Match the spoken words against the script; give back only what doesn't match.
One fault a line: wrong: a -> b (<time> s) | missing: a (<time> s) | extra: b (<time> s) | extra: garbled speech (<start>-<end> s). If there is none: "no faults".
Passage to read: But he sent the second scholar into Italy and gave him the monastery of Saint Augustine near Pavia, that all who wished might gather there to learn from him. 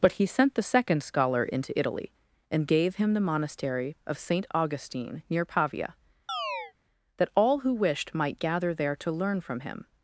no faults